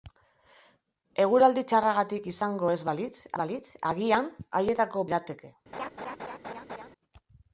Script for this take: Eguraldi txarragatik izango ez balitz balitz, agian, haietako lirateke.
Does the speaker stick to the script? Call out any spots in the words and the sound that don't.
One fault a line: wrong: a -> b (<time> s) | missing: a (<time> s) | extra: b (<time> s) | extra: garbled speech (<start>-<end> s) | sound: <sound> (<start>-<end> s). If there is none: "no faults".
sound: laugh (5.7-6.9 s)